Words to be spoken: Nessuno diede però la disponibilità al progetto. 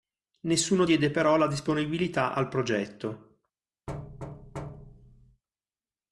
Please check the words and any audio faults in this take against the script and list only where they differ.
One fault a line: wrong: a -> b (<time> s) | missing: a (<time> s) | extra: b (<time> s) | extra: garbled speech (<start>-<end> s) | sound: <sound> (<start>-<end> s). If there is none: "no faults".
sound: thud (3.9-5.4 s)